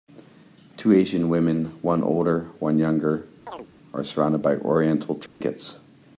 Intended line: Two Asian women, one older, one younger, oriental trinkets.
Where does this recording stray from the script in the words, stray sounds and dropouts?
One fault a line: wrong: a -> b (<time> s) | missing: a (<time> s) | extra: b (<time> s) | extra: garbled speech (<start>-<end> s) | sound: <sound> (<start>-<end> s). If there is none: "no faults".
sound: chirp (3.5-3.7 s)
extra: are surrounded by (3.9 s)
sound: dropout (5.3-5.4 s)